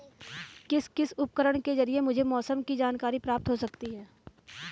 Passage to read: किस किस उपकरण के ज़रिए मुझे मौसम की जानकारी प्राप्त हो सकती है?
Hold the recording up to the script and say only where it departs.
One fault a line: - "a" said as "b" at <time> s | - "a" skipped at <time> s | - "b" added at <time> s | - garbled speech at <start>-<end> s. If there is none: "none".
none